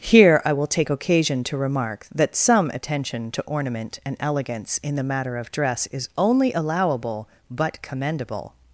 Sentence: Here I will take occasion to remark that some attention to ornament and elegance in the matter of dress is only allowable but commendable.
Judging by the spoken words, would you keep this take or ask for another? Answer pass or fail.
pass